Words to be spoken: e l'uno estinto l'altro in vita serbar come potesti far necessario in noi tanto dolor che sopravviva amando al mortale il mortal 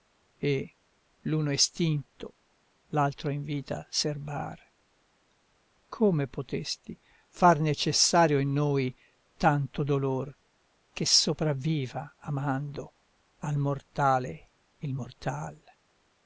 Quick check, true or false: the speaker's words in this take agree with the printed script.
true